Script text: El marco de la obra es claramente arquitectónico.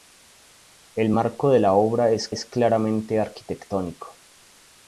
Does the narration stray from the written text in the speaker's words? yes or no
yes